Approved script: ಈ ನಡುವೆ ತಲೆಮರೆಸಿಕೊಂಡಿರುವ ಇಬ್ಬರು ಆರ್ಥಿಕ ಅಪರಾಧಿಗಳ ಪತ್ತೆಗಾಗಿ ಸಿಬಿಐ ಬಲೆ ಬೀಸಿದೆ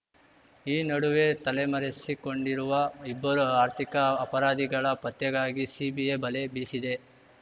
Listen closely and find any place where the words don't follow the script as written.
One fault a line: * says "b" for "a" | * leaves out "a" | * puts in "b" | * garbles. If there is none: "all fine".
all fine